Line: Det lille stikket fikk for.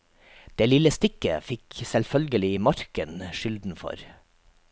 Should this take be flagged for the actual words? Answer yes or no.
yes